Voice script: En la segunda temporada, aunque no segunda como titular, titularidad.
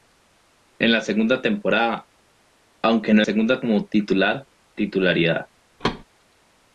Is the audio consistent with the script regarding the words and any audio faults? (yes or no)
no